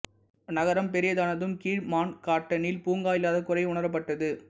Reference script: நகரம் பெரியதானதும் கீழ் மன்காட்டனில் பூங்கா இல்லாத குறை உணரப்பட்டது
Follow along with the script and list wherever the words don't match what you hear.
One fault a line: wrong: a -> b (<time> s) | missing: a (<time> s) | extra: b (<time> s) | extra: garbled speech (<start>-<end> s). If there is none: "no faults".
no faults